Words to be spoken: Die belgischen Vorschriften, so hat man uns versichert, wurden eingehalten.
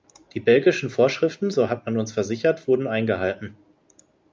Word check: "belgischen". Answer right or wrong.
right